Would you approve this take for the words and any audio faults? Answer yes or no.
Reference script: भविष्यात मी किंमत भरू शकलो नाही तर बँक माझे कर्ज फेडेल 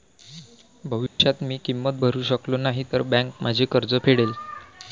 no